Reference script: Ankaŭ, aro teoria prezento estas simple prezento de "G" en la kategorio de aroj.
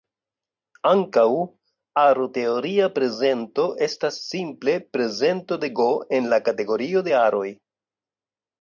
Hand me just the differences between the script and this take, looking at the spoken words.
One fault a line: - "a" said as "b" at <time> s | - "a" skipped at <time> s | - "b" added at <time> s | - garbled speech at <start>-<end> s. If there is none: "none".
none